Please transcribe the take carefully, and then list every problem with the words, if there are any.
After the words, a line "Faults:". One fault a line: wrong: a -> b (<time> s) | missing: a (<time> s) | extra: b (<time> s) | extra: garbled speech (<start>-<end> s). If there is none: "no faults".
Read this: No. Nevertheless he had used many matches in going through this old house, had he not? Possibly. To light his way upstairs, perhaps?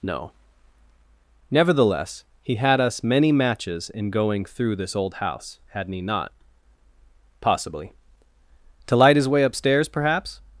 No. Nevertheless he had us many matches in going through this old house, hadn't he not? Possibly. To light his way upstairs, perhaps?
Faults:
wrong: used -> us (2.8 s)
wrong: had -> hadn't (5.7 s)